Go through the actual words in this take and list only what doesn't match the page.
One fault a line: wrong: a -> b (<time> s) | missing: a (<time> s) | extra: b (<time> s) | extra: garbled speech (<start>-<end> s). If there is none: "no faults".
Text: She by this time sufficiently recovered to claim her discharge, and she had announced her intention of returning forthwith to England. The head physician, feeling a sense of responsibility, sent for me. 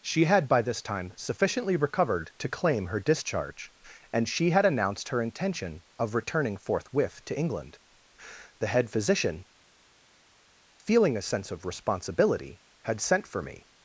extra: had (0.2 s)
extra: had (12.8 s)